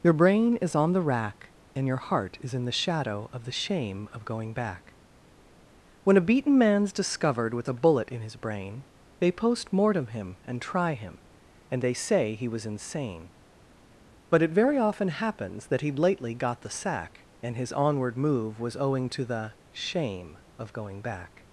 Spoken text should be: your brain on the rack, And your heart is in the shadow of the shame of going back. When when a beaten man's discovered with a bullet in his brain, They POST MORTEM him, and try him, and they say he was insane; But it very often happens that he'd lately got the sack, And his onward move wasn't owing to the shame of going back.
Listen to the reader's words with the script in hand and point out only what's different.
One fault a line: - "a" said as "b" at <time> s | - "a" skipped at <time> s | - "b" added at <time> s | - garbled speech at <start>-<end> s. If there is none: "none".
- "is" added at 0.6 s
- "when" skipped at 6.2 s
- "wasn't" said as "was" at 18.6 s